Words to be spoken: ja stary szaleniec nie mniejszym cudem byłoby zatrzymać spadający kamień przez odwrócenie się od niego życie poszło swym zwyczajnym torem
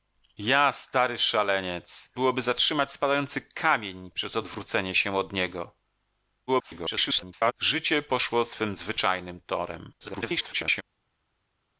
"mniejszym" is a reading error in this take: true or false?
true